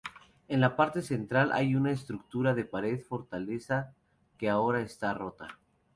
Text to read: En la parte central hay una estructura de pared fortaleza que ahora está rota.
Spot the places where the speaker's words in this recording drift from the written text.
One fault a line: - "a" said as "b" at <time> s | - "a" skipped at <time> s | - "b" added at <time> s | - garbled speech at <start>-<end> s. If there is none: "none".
none